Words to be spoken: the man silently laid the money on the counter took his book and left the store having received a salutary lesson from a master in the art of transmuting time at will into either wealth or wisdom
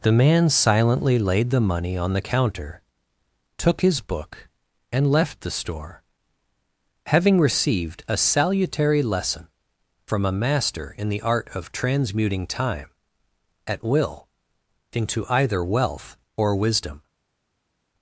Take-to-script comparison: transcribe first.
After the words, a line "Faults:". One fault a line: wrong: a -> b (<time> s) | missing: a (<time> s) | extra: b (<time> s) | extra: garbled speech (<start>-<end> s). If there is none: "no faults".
the man silently laid the money on the counter took his book and left the store having received a salutary lesson from a master in the art of transmuting time at will into either wealth or wisdom
Faults:
no faults